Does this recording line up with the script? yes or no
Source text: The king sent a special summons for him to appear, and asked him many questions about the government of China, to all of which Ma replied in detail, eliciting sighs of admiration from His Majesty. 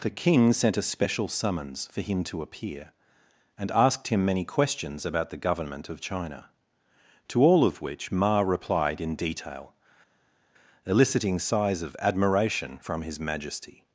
yes